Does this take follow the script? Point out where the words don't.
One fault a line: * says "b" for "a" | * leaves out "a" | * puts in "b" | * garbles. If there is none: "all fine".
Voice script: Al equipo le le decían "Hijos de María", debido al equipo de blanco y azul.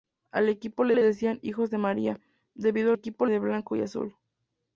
all fine